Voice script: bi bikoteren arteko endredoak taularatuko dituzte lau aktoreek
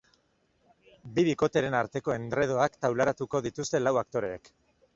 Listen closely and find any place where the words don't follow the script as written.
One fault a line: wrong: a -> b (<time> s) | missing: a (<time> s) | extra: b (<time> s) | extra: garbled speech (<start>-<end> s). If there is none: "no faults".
no faults